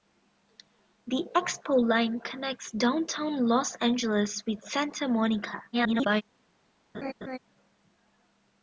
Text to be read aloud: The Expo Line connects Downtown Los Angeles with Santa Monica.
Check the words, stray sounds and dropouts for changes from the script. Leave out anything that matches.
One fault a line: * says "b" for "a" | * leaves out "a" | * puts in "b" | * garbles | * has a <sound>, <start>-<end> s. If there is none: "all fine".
* garbles
* has a laugh, 6.9-7.4 s